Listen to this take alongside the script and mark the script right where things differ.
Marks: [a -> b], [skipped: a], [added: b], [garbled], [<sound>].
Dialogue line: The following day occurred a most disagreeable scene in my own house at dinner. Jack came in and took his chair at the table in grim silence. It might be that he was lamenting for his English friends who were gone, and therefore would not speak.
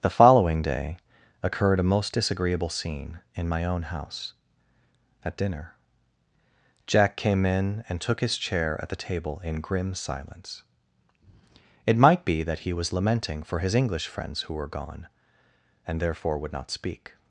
The following day occurred a most disagreeable scene in my own house at dinner. Jack came in and took his chair at the table in grim silence. It might be that he was lamenting for his English friends who were gone, and therefore would not speak.